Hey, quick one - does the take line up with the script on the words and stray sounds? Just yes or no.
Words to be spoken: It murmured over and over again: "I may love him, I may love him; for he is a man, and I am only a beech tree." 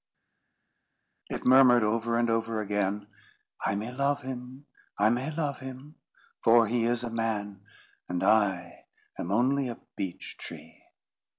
yes